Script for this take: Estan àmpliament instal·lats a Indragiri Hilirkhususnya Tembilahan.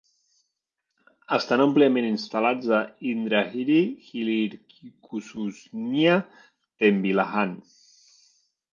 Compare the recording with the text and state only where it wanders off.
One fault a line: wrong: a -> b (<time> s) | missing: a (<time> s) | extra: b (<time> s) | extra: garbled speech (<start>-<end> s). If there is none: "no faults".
no faults